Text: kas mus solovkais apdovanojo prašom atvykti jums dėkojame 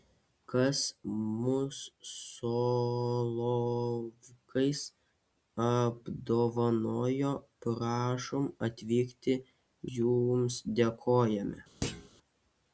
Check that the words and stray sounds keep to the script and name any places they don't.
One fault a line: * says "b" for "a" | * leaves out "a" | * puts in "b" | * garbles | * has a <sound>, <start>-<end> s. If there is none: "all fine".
* has a thud, 11.8-12.1 s